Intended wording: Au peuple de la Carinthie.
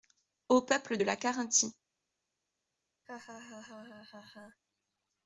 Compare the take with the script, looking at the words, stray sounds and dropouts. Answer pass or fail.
fail